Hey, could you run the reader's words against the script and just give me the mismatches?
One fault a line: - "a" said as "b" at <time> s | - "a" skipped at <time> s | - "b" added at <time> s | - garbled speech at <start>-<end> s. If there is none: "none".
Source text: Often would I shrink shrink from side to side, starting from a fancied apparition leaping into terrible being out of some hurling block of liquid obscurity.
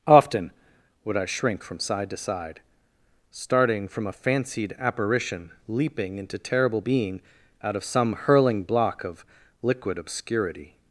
- "shrink" skipped at 1.6 s